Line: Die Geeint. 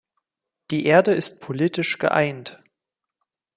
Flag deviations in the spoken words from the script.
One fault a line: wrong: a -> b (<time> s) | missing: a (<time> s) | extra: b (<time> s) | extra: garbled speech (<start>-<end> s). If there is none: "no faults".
extra: Erde ist politisch (0.8 s)